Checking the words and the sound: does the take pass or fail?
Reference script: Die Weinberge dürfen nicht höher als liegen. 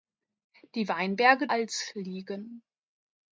fail